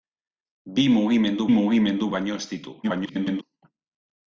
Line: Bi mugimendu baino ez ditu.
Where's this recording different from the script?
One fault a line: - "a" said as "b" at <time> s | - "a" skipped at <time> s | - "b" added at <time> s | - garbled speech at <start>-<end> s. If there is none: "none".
- "mugimendu" added at 1.6 s
- garbled speech at 2.8-3.4 s